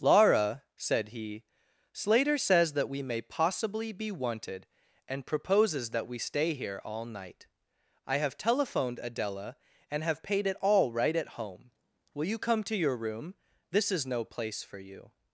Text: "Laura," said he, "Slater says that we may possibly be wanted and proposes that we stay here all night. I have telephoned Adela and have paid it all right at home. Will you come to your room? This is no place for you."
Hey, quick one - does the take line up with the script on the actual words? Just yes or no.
yes